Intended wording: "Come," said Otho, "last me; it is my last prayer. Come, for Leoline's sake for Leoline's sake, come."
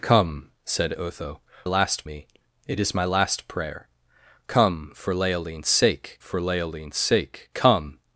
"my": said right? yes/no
yes